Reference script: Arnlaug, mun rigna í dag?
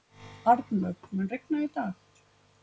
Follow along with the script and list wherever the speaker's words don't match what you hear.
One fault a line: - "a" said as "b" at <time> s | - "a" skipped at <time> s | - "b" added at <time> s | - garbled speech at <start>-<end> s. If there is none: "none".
none